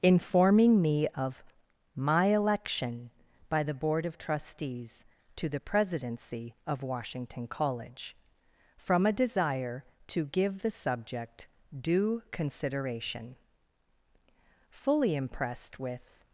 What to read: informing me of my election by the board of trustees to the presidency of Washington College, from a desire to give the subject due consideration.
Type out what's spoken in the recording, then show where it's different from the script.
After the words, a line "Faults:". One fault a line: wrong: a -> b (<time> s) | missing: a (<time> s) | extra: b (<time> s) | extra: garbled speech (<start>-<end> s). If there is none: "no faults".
informing me of my election by the board of trustees to the presidency of Washington College, from a desire to give the subject due consideration. Fully impressed with
Faults:
extra: Fully impressed with (14.7 s)